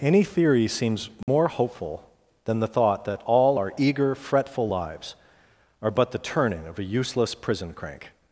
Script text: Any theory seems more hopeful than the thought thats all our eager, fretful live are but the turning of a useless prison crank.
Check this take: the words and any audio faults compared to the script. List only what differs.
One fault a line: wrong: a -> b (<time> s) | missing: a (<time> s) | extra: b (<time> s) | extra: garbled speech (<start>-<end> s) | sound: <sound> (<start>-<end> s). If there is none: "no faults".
sound: dropout (1.2-1.3 s)
wrong: thats -> that (3.0 s)
wrong: live -> lives (4.7 s)